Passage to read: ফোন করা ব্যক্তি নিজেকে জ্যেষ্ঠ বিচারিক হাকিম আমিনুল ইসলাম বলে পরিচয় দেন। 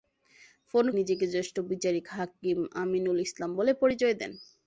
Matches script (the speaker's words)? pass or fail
fail